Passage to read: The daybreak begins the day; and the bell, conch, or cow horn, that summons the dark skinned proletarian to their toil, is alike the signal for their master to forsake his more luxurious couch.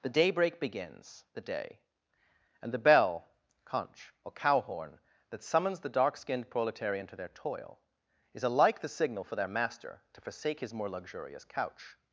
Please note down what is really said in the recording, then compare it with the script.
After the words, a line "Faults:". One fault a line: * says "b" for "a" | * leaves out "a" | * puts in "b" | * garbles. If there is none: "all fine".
The daybreak begins the day; and the bell, conch, or cow horn, that summons the dark skinned proletarian to their toil, is alike the signal for their master to forsake his more luxurious couch.
Faults:
all fine